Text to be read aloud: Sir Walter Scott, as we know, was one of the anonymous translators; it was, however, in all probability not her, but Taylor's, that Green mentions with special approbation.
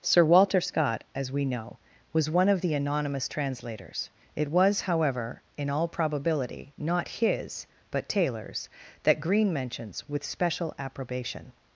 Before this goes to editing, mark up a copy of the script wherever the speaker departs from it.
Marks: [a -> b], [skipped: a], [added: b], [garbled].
Sir Walter Scott, as we know, was one of the anonymous translators; it was, however, in all probability not [her, -> his] but Taylor's, that Green mentions with special approbation.